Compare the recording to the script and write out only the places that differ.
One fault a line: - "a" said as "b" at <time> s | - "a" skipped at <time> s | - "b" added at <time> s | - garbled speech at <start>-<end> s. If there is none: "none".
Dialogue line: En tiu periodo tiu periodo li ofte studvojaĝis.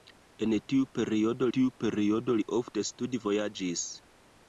none